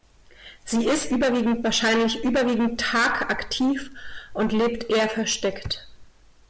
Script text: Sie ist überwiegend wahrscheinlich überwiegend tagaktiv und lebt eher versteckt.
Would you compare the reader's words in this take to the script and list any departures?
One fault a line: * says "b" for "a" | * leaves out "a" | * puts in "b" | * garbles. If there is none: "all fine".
all fine